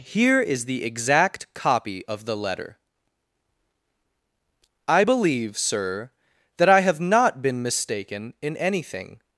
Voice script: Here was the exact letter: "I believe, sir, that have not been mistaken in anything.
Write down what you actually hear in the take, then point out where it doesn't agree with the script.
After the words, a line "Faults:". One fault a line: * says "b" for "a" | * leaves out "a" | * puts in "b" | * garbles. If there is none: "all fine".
Here is the exact copy of the letter: "I believe, sir, that I have not been mistaken in anything.
Faults:
* says "is" for "was"
* puts in "copy of the"
* puts in "I"